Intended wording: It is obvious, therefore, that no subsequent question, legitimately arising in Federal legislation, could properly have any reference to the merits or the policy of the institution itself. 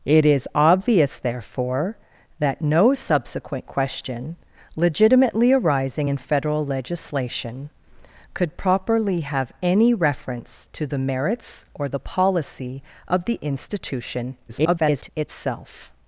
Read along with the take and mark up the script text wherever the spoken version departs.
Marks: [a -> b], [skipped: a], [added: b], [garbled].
It is obvious, therefore, that no subsequent question, legitimately arising in Federal legislation, could properly have any reference to the merits or the policy of the institution [garbled] itself.